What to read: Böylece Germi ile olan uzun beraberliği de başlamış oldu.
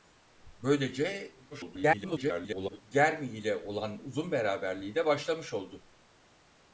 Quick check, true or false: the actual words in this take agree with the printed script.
false